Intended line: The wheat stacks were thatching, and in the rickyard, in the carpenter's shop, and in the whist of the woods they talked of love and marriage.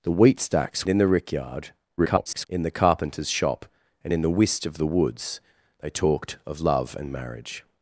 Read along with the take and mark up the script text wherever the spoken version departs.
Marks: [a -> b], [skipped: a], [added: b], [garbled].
The wheat stacks [skipped: were thatching, and] in the rickyard, [garbled] in the carpenter's shop, and in the whist of the woods they talked of love and marriage.